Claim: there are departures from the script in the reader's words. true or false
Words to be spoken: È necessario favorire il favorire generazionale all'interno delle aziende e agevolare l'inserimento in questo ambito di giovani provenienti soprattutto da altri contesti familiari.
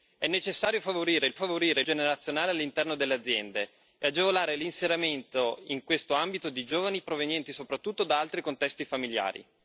false